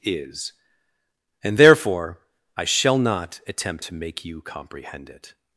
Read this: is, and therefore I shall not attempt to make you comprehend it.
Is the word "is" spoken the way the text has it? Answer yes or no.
yes